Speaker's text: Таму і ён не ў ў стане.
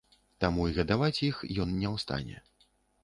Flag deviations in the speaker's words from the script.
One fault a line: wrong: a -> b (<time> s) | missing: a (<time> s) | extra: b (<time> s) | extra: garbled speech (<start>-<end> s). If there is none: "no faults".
extra: гадаваць іх (0.8 s)
missing: ў (2.1 s)